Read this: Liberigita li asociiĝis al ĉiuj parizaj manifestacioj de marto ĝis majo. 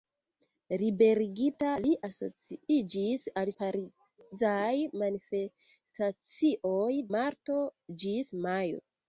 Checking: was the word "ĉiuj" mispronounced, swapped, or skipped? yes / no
yes